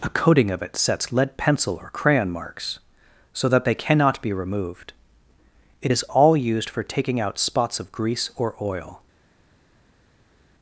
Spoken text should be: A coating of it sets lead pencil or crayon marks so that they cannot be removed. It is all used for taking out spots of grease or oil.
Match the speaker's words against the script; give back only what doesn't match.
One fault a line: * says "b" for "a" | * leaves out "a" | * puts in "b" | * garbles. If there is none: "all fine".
all fine